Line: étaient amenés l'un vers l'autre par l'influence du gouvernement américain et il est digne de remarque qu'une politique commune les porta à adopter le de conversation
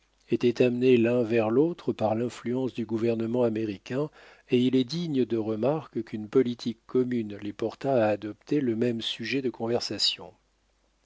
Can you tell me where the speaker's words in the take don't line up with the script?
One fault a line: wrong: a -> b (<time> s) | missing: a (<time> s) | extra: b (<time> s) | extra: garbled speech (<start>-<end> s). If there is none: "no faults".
extra: même sujet (8.8 s)